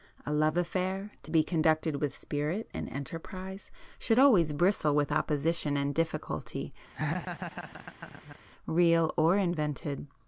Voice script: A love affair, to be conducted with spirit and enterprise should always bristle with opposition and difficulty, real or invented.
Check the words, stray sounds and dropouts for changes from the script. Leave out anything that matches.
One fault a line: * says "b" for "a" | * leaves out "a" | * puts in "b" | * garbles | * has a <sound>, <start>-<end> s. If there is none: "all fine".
* has a laugh, 6.9-8.4 s